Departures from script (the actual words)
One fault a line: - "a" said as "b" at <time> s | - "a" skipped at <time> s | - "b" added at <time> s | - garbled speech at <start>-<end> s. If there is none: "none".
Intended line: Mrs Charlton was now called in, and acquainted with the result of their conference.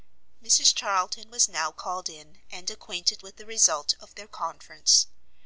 none